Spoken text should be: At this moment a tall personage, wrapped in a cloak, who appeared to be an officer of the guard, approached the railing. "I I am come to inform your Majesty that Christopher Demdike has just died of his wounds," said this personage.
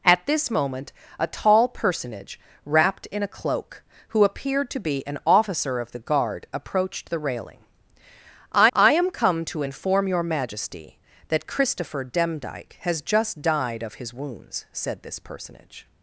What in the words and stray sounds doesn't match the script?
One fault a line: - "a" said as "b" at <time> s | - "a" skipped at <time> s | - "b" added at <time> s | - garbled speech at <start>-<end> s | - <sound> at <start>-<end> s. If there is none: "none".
none